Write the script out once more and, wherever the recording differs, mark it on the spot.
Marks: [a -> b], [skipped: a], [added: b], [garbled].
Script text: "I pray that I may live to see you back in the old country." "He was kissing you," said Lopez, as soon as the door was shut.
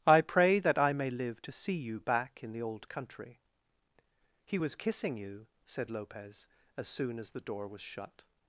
"I pray that I may live to see you back in the old country." "He was kissing you," said Lopez, as soon as the door was shut.